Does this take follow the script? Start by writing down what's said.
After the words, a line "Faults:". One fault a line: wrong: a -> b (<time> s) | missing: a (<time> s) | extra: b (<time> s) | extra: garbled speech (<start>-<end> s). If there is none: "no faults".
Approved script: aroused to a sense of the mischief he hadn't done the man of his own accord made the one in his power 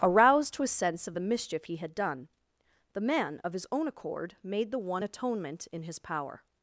aroused to a sense of the mischief he had done the man of his own accord made the one atonement in his power
Faults:
wrong: hadn't -> had (1.8 s)
extra: atonement (5.0 s)